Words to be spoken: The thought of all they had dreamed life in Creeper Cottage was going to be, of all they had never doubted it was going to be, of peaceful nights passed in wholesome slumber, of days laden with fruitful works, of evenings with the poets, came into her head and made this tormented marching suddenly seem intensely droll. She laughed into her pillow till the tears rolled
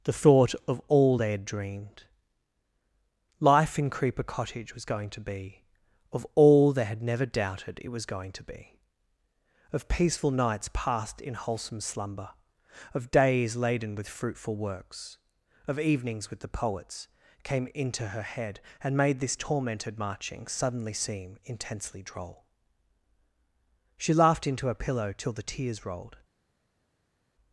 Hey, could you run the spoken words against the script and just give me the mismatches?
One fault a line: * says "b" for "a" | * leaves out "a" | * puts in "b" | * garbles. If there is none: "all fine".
all fine